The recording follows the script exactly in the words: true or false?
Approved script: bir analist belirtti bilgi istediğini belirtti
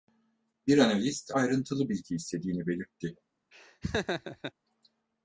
false